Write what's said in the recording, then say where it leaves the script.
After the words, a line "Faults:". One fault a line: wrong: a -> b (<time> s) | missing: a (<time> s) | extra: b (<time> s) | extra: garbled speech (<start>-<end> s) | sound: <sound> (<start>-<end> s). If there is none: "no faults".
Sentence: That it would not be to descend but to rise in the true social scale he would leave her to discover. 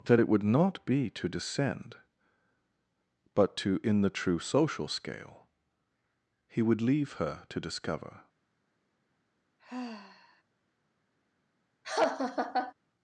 That it would not be to descend but to in the true social scale he would leave her to discover.
Faults:
missing: rise (3.8 s)
sound: sigh (9.6-10.4 s)
sound: laugh (11.8-12.7 s)